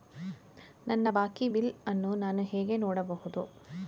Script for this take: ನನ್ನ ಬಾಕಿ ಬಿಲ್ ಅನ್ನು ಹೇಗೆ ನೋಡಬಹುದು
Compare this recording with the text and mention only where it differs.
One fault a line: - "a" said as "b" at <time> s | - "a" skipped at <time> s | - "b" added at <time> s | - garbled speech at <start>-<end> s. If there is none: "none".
- "ನಾನು" added at 2.2 s